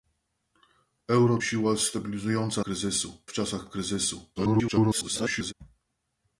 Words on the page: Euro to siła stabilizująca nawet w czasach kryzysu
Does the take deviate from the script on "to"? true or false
true